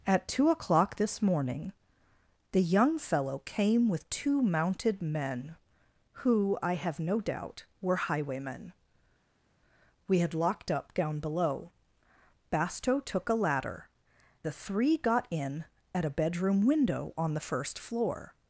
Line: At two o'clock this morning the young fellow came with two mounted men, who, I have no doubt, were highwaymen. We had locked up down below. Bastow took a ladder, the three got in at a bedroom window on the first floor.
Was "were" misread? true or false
false